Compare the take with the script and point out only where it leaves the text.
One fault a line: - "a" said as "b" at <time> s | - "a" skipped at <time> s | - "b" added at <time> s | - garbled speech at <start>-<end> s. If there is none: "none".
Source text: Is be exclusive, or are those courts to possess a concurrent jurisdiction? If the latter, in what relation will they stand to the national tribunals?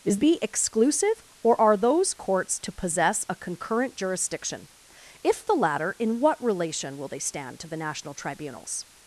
none